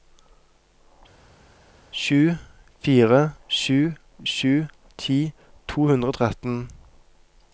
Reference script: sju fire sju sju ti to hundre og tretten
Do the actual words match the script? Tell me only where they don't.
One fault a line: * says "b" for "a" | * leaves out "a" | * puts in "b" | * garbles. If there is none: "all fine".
all fine